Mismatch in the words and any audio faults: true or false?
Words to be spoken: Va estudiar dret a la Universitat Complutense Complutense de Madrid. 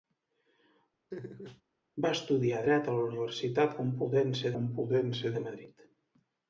true